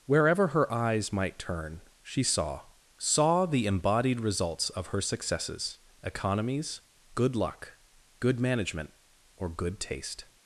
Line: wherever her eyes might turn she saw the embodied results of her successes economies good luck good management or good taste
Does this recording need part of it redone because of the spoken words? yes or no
yes